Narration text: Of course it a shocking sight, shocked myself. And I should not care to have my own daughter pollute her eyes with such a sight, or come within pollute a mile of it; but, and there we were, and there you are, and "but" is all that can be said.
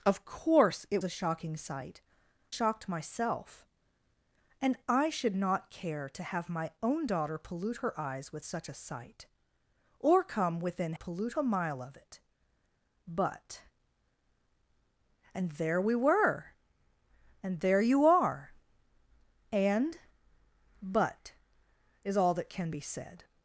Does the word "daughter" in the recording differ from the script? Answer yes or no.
no